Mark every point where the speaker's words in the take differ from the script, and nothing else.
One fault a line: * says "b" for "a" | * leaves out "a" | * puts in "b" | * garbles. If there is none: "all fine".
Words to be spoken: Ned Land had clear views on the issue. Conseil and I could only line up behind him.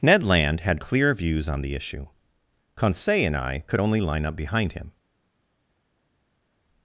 all fine